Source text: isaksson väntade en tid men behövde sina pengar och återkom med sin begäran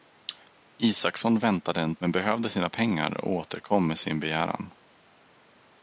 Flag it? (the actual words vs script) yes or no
yes